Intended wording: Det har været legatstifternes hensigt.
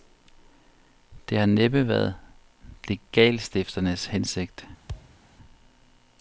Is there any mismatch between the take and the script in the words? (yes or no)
yes